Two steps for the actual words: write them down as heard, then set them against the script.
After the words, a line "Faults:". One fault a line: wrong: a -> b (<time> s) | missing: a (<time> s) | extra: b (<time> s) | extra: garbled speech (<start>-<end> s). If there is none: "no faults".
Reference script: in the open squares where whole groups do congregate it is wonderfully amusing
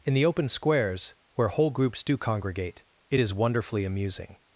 in the open squares where whole groups do congregate it is wonderfully amusing
Faults:
no faults